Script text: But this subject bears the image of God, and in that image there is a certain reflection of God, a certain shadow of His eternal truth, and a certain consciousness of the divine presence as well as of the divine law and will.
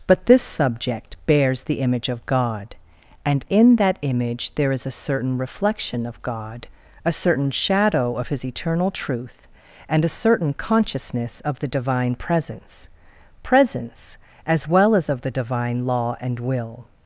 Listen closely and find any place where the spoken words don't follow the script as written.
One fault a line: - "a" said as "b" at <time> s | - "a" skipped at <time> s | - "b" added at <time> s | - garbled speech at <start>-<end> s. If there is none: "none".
- "presence" added at 13.4 s